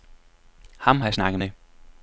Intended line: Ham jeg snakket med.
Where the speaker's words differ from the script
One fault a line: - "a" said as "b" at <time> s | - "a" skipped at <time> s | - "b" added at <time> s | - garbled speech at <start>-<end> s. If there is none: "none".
none